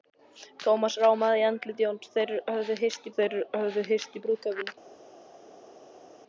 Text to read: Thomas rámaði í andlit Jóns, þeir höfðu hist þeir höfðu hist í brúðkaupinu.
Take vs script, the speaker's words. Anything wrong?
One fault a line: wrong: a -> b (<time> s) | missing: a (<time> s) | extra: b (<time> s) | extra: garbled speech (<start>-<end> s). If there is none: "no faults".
no faults